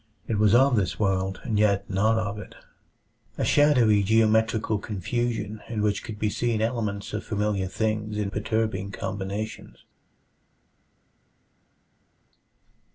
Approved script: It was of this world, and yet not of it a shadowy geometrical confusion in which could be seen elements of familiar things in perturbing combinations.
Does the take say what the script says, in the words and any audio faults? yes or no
yes